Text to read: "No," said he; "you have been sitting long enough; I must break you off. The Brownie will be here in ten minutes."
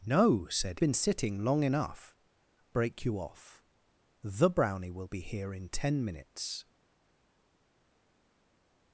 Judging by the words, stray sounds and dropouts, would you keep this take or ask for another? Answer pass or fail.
fail